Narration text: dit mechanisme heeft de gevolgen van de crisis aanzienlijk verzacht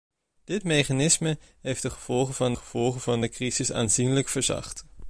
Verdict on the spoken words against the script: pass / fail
fail